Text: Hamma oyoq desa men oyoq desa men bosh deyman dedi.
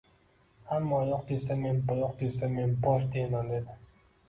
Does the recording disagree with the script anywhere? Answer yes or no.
no